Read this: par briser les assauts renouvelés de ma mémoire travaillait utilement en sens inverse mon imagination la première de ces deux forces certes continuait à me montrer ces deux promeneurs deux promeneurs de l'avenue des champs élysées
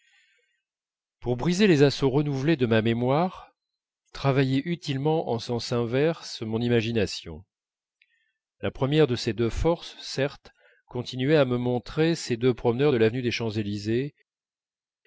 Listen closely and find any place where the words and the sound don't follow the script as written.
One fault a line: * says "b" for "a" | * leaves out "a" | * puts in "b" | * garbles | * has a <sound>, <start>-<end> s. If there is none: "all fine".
* says "pour" for "par"
* leaves out "deux promeneurs"